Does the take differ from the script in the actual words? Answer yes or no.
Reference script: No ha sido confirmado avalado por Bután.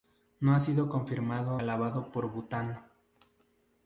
no